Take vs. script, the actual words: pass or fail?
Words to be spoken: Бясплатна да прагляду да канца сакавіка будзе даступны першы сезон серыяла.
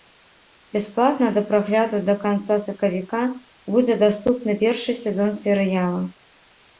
pass